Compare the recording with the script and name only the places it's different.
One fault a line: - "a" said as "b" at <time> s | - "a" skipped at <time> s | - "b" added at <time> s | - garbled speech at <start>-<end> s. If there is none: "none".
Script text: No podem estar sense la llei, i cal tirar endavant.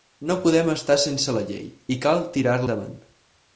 none